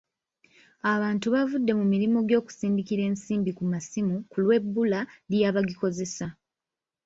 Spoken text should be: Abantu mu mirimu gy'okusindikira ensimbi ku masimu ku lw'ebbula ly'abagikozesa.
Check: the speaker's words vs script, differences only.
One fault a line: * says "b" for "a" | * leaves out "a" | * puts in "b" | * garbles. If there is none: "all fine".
* puts in "bavudde"